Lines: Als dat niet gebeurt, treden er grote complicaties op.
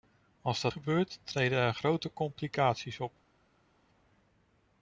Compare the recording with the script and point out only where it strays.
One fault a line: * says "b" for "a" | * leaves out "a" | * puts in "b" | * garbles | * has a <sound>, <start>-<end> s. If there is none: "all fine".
* leaves out "niet"